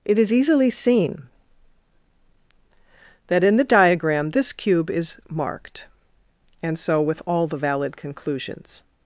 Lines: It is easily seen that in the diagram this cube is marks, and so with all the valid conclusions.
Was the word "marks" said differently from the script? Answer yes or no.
yes